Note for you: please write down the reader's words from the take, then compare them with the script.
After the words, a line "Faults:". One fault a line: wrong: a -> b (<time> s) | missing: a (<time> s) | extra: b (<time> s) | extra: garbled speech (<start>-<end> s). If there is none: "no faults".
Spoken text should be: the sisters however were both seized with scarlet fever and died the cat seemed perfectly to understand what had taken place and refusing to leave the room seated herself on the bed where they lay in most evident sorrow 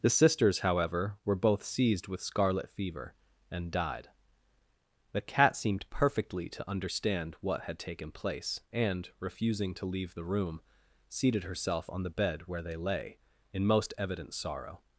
the sisters however were both seized with scarlet fever and died the cat seemed perfectly to understand what had taken place and refusing to leave the room seated herself on the bed where they lay in most evident sorrow
Faults:
no faults